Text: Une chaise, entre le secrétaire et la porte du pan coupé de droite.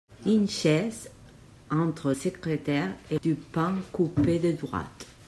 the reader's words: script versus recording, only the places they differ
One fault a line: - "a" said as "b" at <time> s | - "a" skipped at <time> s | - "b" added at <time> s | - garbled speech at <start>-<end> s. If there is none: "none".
- "le" skipped at 2.1 s
- "la porte" skipped at 3.2 s